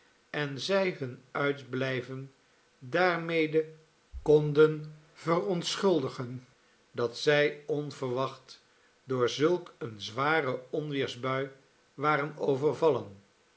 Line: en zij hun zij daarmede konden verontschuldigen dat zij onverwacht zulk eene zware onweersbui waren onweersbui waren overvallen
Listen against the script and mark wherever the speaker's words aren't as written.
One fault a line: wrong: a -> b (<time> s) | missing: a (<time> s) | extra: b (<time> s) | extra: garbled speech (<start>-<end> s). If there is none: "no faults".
wrong: zij -> uitblijven (1.3 s)
extra: door (9.0 s)
missing: onweersbui waren (12.4 s)